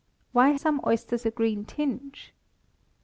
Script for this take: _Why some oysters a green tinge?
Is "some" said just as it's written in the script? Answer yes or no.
yes